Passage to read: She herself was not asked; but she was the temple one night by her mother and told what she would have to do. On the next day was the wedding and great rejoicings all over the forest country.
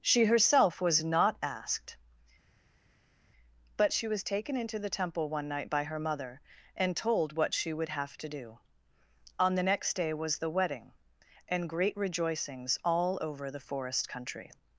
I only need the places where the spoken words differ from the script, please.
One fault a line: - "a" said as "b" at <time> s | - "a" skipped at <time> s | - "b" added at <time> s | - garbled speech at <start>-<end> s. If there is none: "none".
- "taken into" added at 4.2 s